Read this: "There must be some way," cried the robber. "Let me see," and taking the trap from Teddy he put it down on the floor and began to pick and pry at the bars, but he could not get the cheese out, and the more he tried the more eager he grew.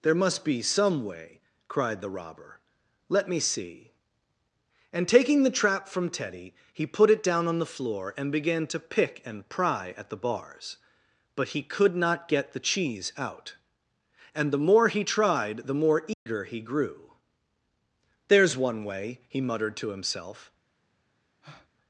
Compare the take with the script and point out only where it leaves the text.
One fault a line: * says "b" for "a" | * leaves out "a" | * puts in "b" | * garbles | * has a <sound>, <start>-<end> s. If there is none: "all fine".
* has a dropout, 16.1-16.3 s
* puts in "There's one way he muttered to himself"
* has a breath, 21.4-21.7 s